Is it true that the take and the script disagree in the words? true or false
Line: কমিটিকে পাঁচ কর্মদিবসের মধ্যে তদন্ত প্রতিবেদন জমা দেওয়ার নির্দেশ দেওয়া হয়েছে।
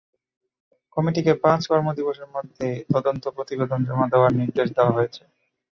false